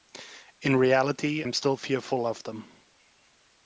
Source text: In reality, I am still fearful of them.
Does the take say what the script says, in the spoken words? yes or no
no